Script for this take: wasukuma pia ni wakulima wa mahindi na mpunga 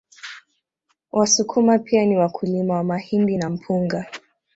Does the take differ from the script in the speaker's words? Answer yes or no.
no